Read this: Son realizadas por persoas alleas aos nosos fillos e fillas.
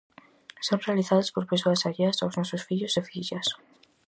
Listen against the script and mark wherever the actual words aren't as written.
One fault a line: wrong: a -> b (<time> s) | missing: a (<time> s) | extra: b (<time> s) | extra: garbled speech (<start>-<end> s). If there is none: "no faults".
no faults